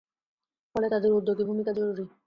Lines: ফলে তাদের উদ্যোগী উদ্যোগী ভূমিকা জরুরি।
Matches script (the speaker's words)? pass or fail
fail